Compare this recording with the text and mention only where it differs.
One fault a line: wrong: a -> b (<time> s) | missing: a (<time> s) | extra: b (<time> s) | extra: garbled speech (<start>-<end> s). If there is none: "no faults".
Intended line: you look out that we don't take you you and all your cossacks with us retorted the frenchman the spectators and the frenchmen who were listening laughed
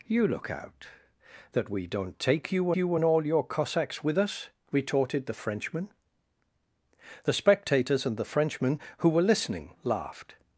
no faults